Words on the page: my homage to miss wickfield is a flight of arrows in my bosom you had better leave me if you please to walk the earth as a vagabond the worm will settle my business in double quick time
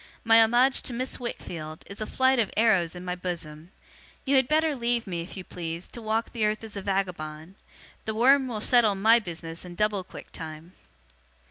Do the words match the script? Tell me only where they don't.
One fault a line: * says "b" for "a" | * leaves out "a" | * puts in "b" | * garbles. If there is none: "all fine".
all fine